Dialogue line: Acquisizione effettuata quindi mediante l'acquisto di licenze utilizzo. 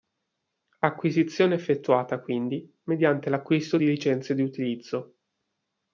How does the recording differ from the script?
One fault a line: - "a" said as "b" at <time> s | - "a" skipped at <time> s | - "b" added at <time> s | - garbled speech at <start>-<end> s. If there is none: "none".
- "di" added at 4.3 s